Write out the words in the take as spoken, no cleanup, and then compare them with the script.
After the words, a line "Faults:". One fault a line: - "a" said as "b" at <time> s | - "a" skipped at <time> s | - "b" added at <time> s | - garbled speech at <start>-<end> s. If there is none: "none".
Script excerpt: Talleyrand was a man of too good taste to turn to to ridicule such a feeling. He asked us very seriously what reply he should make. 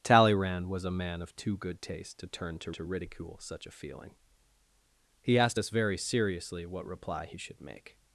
Talleyrand was a man of too good taste to turn to to ridicule such a feeling. He asked us very seriously what reply he should make.
Faults:
none